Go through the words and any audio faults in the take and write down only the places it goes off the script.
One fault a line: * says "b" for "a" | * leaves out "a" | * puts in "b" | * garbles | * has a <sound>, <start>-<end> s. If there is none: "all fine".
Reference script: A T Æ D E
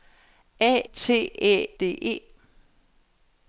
all fine